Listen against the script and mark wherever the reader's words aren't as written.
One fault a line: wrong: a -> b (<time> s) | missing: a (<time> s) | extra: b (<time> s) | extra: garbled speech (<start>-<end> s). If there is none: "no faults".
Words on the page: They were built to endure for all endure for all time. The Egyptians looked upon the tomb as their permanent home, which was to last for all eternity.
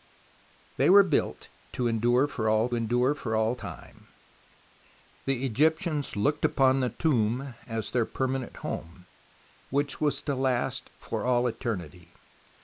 no faults